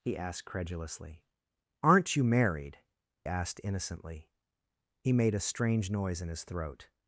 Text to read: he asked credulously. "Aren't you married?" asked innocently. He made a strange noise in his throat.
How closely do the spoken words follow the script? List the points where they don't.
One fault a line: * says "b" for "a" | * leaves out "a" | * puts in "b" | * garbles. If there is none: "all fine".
all fine